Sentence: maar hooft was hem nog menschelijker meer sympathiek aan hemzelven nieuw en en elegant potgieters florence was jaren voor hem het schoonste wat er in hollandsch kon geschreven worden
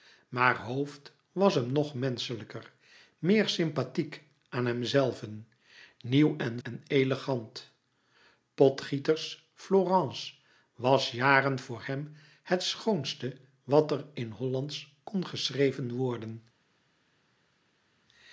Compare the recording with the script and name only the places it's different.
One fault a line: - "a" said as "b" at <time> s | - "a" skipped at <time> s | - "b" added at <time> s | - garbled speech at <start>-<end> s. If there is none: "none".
none